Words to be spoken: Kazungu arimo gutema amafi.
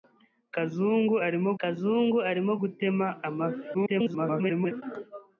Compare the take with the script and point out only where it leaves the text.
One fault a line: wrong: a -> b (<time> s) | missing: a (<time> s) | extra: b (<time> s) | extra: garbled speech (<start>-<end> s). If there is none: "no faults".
extra: kazungu arimo (1.6 s)
extra: garbled speech (3.7-4.8 s)